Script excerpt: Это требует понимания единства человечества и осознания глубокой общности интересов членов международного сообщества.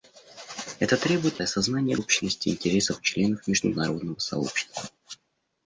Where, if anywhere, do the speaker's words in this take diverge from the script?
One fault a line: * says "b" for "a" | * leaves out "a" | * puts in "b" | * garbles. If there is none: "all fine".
* leaves out "понимания единства человечества"
* leaves out "глубокой"